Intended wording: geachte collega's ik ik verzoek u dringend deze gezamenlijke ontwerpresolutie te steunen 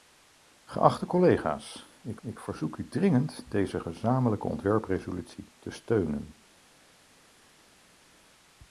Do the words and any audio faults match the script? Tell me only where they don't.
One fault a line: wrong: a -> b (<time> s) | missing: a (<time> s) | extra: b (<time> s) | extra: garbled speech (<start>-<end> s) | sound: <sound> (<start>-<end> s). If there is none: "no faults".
no faults